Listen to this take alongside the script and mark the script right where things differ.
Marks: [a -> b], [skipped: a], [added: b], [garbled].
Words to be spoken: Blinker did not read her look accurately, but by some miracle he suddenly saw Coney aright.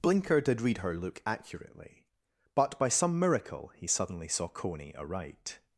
Blinker did [skipped: not] read her look accurately, but by some miracle he suddenly saw Coney aright.